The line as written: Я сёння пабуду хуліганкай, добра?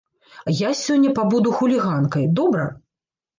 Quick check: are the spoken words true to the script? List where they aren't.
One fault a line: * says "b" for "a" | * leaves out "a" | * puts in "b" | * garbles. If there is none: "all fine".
all fine